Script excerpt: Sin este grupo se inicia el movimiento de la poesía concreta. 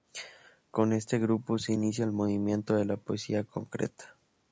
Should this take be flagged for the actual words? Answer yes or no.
yes